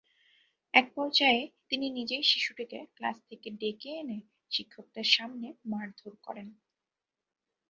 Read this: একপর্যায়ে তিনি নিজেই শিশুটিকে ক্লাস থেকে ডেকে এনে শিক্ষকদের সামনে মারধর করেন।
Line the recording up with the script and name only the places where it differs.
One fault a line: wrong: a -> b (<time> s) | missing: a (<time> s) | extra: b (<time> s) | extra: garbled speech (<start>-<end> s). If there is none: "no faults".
no faults